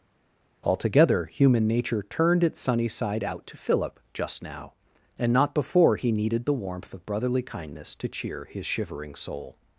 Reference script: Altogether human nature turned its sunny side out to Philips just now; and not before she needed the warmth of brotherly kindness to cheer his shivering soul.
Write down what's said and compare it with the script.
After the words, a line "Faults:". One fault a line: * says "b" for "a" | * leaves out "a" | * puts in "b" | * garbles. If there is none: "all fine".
Altogether human nature turned its sunny side out to Philip just now; and not before he needed the warmth of brotherly kindness to cheer his shivering soul.
Faults:
* says "Philip" for "Philips"
* says "he" for "she"